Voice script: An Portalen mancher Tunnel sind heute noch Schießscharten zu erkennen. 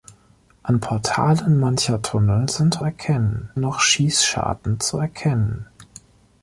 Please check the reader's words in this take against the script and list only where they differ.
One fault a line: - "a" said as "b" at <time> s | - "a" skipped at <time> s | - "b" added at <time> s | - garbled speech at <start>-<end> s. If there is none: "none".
- "heute" said as "erkennen" at 2.8 s